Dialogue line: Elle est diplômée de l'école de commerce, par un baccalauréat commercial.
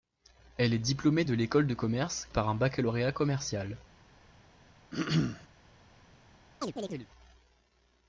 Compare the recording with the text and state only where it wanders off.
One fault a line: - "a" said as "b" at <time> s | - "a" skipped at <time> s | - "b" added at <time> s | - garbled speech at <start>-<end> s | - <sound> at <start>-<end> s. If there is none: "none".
- throat clearing at 4.9-5.5 s
- chirp at 6.6-7.1 s